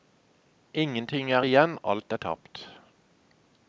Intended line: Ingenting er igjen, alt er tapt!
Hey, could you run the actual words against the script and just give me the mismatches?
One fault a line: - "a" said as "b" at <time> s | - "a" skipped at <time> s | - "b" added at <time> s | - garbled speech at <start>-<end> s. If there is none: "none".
none